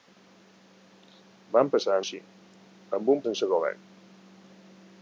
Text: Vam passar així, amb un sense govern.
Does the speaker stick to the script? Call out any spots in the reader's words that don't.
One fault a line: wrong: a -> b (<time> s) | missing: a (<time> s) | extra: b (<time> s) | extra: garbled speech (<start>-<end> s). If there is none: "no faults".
no faults